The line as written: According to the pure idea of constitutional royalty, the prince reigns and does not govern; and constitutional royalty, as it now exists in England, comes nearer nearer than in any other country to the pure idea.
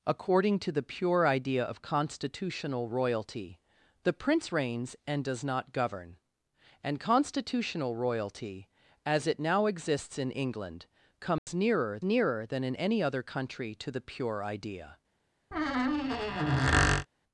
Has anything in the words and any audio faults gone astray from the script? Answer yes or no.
yes